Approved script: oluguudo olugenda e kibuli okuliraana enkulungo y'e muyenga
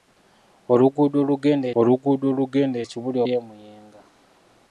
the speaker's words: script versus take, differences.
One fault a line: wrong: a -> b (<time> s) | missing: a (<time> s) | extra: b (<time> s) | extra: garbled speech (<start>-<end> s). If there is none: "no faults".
extra: oluguudo olugenda (1.8 s)
missing: okuliraana enkulungo (3.2 s)